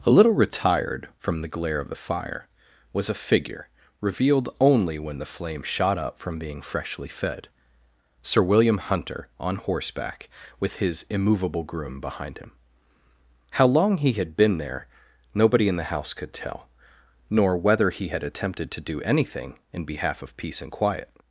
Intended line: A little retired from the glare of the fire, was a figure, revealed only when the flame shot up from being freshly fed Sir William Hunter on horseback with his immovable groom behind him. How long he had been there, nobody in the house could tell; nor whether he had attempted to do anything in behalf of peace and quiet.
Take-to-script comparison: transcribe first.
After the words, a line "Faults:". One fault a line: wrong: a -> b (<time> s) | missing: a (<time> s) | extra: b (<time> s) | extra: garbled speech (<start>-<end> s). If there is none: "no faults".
A little retired from the glare of the fire, was a figure, revealed only when the flame shot up from being freshly fed Sir William Hunter on horseback with his immovable groom behind him. How long he had been there, nobody in the house could tell; nor whether he had attempted to do anything in behalf of peace and quiet.
Faults:
no faults